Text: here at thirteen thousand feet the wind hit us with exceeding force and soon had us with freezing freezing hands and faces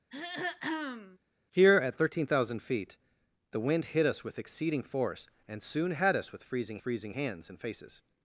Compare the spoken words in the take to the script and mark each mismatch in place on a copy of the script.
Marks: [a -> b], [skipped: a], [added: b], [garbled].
here at thirteen thousand feet the wind hit us with exceeding force and soon had us with freezing freezing hands and faces